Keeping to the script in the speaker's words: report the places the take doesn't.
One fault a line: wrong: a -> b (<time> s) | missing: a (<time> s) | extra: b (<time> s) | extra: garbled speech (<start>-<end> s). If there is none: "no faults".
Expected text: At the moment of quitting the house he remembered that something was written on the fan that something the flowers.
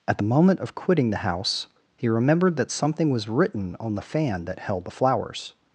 wrong: something -> held (4.6 s)